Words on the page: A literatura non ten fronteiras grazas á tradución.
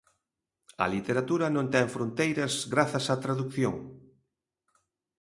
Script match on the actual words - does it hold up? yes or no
yes